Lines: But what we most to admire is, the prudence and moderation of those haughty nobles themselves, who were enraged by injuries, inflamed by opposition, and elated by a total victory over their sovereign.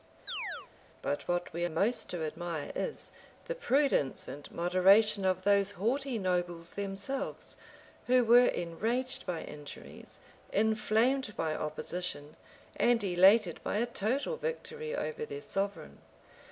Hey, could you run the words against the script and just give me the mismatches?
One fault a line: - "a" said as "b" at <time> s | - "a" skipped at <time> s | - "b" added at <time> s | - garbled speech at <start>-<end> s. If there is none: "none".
none